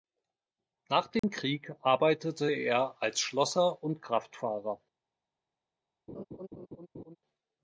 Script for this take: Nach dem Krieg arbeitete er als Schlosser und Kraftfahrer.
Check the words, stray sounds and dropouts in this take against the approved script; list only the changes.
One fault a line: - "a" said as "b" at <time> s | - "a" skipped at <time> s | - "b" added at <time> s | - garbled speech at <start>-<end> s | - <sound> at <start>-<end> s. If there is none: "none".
- dropout at 1.2-1.2 s
- laugh at 6.1-7.2 s